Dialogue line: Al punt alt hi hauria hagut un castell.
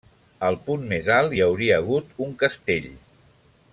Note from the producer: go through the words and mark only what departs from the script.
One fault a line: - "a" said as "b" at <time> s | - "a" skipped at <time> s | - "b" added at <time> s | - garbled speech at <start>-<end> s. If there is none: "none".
- "més" added at 0.9 s